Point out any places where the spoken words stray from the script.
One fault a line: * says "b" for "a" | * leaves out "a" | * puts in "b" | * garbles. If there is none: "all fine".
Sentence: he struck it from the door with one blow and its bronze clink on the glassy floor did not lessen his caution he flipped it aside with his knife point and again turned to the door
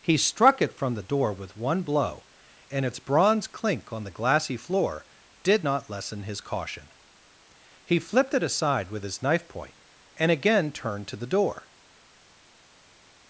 all fine